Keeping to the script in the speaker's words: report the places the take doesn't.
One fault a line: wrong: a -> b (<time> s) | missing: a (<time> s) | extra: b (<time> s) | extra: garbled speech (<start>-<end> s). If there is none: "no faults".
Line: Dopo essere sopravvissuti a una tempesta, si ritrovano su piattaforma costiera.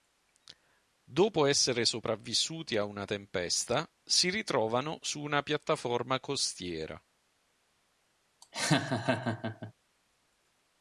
extra: una (5.2 s)